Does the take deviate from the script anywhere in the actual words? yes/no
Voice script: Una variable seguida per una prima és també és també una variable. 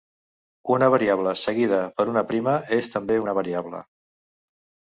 yes